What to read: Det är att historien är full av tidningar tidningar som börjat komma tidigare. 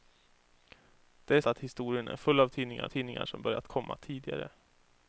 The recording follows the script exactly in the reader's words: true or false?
true